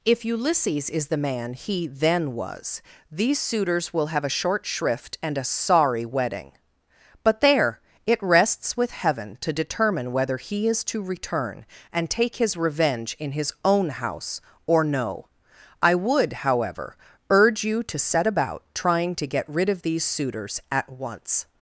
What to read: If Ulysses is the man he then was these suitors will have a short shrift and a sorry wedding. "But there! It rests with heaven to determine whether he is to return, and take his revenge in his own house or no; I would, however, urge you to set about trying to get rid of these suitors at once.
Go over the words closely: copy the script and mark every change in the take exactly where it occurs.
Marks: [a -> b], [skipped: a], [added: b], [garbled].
If Ulysses is the man he then was these suitors will have a short shrift and a sorry wedding. "But there! It rests with heaven to determine whether he is to return, and take his revenge in his own house or no; I would, however, urge you to set about trying to get rid of these suitors at once.